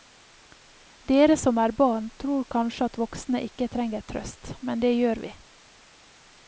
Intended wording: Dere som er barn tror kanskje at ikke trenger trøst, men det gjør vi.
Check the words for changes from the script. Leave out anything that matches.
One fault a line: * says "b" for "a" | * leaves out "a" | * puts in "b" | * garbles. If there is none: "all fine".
* puts in "voksne"